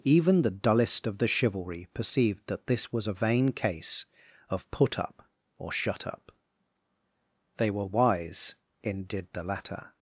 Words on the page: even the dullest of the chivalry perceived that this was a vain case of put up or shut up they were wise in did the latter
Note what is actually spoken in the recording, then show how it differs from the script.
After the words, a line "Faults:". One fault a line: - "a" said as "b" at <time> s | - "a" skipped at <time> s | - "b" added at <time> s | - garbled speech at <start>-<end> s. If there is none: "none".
even the dullest of the chivalry perceived that this was a vain case of put up or shut up they were wise in did the latter
Faults:
none